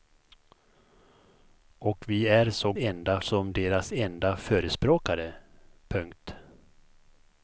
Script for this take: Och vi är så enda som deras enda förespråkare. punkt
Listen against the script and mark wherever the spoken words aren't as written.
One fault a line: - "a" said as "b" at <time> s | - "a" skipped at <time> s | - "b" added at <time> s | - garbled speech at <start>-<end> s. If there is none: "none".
none